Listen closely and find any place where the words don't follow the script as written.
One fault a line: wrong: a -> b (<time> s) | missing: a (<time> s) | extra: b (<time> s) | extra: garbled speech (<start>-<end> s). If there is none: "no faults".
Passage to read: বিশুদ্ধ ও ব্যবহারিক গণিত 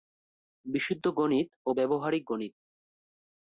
extra: গণিত (1.2 s)